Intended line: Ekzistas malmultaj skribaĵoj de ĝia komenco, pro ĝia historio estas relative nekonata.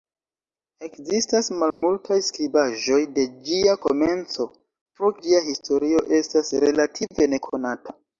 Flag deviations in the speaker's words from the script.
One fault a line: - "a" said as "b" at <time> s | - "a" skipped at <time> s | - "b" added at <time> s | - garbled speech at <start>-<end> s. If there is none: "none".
none